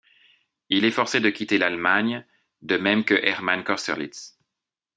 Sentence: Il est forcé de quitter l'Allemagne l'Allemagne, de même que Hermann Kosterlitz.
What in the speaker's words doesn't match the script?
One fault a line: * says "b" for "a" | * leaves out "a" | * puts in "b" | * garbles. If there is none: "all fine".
* leaves out "l'Allemagne"